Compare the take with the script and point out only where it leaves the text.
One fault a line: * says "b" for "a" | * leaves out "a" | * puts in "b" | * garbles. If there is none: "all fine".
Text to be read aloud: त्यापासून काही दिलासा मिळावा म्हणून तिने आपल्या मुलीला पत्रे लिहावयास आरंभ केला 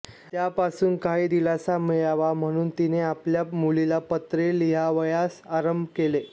all fine